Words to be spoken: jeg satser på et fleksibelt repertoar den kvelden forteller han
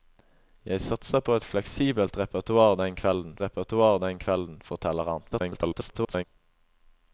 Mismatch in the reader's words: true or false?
true